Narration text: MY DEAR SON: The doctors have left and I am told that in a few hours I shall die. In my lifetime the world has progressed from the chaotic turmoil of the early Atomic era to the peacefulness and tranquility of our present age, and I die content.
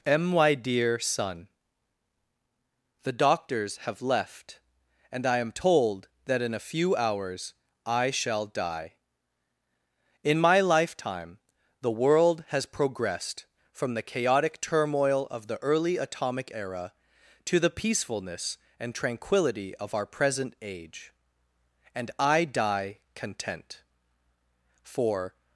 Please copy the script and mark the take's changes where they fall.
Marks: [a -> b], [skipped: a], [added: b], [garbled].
MY DEAR SON: The doctors have left and I am told that in a few hours I shall die. In my lifetime the world has progressed from the chaotic turmoil of the early Atomic era to the peacefulness and tranquility of our present age, and I die content. [added: For]